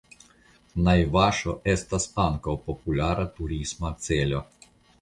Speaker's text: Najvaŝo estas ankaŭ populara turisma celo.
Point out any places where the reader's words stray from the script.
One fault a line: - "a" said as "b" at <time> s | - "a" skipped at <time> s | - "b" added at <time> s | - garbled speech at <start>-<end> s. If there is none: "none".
none